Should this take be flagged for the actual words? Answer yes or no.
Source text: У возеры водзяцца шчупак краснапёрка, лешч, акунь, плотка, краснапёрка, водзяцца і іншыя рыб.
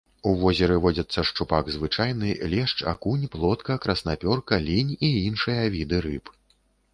yes